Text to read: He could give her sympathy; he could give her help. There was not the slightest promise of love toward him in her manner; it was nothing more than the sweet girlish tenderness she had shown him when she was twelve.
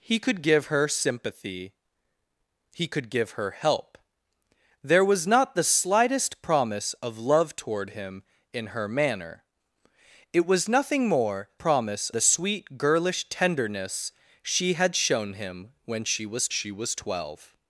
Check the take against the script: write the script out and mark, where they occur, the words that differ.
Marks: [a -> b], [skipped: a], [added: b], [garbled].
He could give her sympathy; he could give her help. There was not the slightest promise of love toward him in her manner; it was nothing more [than -> promise] the sweet girlish tenderness she had shown him when she was [added: she was] twelve.